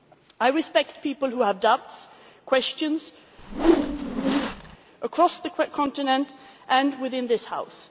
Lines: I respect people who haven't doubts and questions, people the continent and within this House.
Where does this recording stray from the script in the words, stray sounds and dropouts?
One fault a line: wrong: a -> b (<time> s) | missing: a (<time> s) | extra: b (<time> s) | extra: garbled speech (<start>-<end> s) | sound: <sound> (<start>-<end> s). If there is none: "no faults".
wrong: haven't -> have (1.4 s)
sound: whoosh (3.4-4.8 s)
wrong: people -> across (5.0 s)